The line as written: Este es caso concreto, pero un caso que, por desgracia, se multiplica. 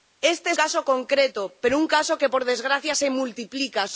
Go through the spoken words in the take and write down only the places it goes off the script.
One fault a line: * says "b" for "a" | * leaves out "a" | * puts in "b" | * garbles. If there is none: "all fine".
all fine